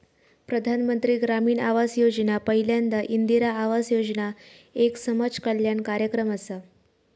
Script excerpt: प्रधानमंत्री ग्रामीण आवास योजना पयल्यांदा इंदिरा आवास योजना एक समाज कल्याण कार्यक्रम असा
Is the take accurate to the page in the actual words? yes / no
yes